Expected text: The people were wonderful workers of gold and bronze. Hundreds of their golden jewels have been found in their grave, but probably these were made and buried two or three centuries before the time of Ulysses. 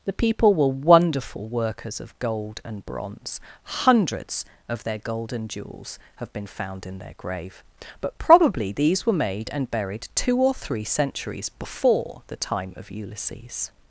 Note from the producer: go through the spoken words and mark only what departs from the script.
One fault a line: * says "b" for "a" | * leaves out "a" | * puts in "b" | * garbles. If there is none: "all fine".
all fine